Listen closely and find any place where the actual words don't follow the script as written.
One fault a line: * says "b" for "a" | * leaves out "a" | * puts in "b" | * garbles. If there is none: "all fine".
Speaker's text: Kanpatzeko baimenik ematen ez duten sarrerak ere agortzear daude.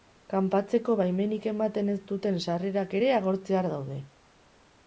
all fine